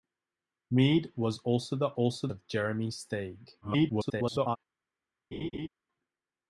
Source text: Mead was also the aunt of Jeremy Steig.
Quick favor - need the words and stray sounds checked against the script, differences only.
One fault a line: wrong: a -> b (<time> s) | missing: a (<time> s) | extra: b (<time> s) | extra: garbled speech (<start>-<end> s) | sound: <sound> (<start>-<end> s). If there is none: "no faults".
wrong: aunt -> also (1.9 s)
extra: garbled speech (3.6-4.6 s)
sound: laugh (5.3-5.7 s)